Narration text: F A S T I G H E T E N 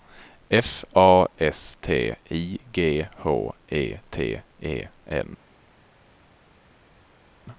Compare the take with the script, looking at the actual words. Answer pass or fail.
pass